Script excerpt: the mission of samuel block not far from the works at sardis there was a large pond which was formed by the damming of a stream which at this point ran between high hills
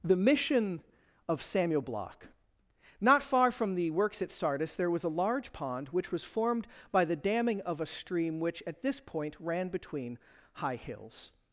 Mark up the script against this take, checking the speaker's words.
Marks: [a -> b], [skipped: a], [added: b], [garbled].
the mission of samuel block not far from the works at sardis there was a large pond which was formed by the damming of a stream which at this point ran between high hills